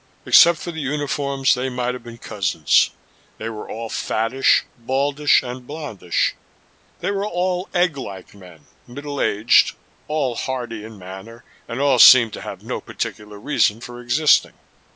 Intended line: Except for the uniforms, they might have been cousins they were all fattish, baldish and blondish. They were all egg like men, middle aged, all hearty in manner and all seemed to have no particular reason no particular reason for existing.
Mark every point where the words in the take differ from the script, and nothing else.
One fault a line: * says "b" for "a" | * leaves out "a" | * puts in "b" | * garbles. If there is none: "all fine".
* leaves out "no particular reason"